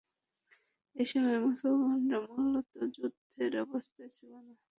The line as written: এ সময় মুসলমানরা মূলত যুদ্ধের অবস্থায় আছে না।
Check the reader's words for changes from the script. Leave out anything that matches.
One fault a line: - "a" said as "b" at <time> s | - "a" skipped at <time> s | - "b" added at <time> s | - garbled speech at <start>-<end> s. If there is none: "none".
- "আছে" said as "ছিল" at 4.2 s